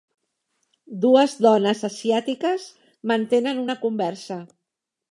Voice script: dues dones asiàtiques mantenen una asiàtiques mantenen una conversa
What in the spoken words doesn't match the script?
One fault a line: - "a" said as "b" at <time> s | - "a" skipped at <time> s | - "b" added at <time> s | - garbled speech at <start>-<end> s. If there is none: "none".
- "asiàtiques mantenen una" skipped at 3.8 s